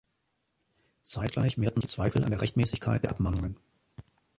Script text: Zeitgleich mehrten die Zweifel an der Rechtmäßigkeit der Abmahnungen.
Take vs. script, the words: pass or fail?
pass